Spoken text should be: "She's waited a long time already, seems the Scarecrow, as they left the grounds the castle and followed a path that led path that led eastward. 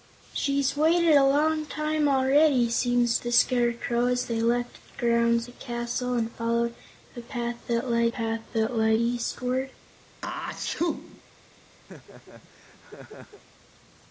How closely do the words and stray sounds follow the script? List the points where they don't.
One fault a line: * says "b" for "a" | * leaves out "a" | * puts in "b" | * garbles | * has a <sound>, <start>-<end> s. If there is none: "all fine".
* has a sneeze, 10.2-11.2 s
* has a laugh, 11.9-13.4 s